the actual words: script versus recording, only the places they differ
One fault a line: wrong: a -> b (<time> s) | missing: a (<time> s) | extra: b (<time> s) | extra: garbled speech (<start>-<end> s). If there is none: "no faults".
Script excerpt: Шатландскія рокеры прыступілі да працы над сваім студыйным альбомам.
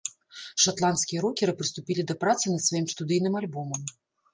no faults